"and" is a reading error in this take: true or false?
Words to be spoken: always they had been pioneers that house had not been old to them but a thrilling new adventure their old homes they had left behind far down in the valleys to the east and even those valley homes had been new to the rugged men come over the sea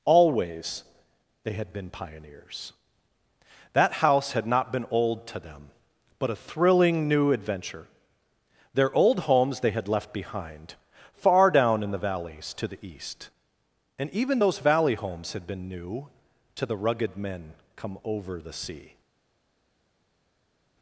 false